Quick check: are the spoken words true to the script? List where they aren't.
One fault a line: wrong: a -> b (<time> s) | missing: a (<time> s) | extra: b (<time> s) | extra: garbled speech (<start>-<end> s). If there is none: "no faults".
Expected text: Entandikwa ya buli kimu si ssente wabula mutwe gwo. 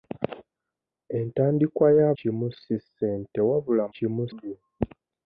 missing: buli (2.1 s)
wrong: mutwe -> kimu (3.9 s)